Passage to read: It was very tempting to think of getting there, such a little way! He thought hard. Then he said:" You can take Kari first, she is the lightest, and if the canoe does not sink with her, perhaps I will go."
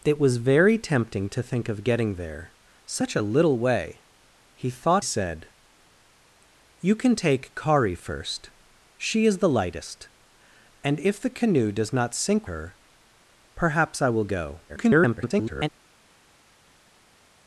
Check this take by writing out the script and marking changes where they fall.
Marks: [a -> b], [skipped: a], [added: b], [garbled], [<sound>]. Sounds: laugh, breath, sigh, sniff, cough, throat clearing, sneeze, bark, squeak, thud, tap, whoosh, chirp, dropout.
It was very tempting to think of getting there, such a little way! He thought [skipped: hard. Then he] said:" You can take Kari first, she is the lightest, and if the canoe does not sink [skipped: with] her, perhaps I will go." [garbled]